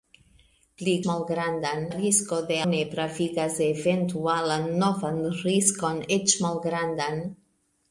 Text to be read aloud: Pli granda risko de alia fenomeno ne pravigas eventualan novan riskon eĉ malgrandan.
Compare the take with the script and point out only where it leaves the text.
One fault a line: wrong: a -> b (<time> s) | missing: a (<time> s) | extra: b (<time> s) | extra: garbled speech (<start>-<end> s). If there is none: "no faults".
wrong: granda -> malgrandan (1.1 s)
missing: alia fenomeno (2.6 s)